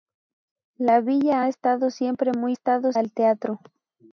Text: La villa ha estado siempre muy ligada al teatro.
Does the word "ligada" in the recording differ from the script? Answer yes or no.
yes